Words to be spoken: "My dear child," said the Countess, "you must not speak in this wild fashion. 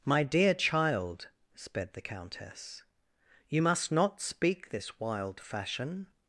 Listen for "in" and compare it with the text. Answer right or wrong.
wrong